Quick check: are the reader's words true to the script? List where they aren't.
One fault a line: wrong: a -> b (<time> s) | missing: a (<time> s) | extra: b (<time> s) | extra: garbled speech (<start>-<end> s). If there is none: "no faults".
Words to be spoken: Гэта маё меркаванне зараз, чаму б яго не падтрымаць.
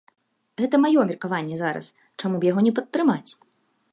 no faults